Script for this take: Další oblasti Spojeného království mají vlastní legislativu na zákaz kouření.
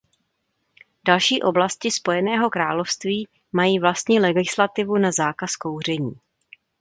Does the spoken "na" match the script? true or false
true